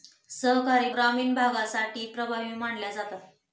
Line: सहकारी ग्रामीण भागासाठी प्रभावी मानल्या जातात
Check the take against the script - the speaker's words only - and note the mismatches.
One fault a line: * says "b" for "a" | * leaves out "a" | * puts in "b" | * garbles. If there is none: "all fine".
all fine